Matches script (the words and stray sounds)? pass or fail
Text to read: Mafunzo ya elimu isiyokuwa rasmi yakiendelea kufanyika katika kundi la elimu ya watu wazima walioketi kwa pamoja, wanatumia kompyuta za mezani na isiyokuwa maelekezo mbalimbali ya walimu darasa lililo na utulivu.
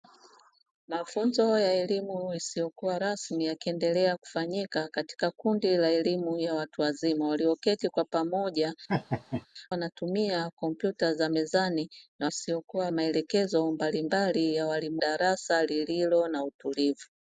fail